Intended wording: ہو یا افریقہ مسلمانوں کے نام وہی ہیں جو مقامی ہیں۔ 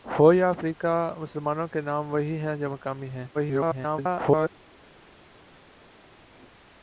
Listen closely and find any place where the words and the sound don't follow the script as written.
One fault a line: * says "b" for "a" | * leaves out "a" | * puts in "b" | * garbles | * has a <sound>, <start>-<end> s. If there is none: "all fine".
* garbles